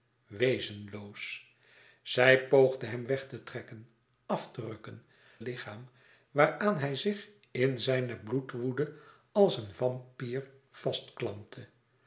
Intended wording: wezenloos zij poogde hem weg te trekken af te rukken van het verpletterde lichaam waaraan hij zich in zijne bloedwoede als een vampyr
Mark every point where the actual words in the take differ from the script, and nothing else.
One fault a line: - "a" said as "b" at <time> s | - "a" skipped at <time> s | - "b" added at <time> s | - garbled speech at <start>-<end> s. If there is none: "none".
- "van het verpletterde" skipped at 5.0 s